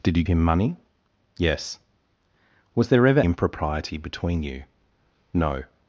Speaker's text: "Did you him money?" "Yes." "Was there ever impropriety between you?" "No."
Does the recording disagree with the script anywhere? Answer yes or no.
no